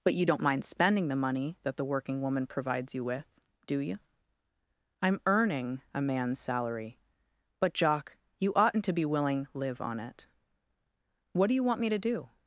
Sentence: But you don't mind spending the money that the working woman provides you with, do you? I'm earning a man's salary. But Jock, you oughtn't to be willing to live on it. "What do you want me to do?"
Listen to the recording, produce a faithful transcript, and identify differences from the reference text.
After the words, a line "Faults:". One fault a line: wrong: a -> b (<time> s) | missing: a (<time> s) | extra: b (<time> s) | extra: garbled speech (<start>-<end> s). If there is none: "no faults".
But you don't mind spending the money that the working woman provides you with, do you? I'm earning a man's salary. But Jock, you oughtn't to be willing live on it. "What do you want me to do?"
Faults:
missing: to (9.5 s)